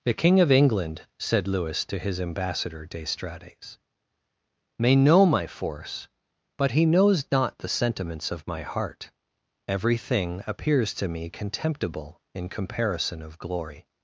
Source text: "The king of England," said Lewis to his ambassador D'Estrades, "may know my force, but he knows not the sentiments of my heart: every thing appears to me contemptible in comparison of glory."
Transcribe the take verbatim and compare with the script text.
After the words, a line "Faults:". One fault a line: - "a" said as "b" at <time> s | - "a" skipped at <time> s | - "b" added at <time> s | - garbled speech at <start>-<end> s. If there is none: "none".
"The king of England," said Lewis to his ambassador D'Estrades, "may know my force, but he knows not the sentiments of my heart: every thing appears to me contemptible in comparison of glory."
Faults:
none